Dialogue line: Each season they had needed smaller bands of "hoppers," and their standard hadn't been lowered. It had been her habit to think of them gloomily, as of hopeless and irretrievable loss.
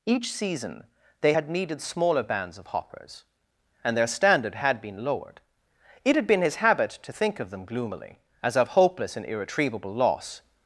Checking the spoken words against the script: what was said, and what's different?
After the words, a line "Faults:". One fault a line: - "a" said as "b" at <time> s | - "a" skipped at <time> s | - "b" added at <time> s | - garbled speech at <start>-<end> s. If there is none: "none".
Each season they had needed smaller bands of "hoppers," and their standard had been lowered. It had been his habit to think of them gloomily, as of hopeless and irretrievable loss.
Faults:
- "hadn't" said as "had" at 4.5 s
- "her" said as "his" at 6.4 s